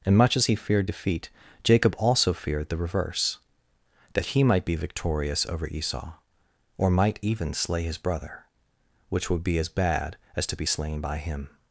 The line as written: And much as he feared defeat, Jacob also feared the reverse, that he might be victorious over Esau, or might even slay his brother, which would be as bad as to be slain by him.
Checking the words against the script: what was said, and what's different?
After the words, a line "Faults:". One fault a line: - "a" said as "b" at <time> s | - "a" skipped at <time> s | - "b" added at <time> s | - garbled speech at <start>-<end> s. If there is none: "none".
And much as he feared defeat, Jacob also feared the reverse, that he might be victorious over Esau, or might even slay his brother, which would be as bad as to be slain by him.
Faults:
none